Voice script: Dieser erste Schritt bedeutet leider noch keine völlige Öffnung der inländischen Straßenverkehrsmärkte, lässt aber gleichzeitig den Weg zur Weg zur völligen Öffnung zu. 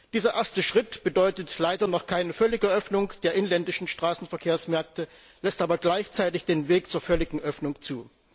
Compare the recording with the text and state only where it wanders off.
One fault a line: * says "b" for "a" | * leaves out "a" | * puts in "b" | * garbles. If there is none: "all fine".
* leaves out "Weg zur"